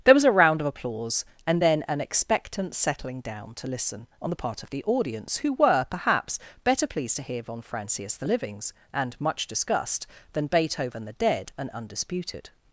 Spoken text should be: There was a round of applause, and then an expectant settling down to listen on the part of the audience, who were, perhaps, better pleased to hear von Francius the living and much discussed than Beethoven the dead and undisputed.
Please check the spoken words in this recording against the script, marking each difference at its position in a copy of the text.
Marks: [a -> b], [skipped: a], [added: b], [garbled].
There was a round of applause, and then an expectant settling down to listen on the part of the audience, who were, perhaps, better pleased to hear von Francius the [living -> livings] and much discussed than Beethoven the dead and undisputed.